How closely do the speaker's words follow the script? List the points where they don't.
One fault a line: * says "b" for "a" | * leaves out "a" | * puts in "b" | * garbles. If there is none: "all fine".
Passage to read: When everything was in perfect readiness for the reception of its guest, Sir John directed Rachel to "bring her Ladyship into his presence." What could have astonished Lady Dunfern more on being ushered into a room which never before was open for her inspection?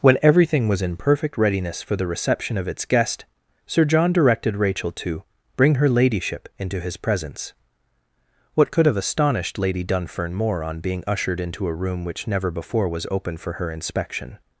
all fine